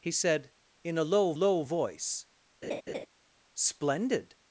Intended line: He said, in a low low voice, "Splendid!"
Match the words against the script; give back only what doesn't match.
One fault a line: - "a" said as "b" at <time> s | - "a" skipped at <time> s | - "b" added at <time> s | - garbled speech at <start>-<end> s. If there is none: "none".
none